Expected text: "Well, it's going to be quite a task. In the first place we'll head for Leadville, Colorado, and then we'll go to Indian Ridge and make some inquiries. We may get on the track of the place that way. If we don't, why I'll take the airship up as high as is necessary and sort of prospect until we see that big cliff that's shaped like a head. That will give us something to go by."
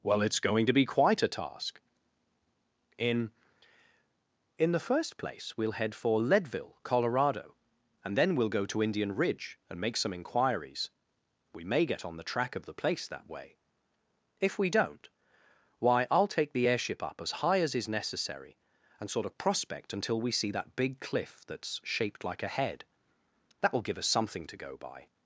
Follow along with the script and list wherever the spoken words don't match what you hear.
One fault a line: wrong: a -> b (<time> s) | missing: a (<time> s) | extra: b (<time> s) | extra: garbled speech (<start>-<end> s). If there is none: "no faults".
extra: In (4.6 s)